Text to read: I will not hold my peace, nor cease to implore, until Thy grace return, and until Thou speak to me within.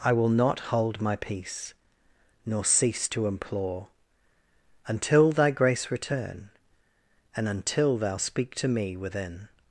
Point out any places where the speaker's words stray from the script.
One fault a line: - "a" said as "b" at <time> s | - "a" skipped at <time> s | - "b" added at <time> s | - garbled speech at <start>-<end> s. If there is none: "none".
none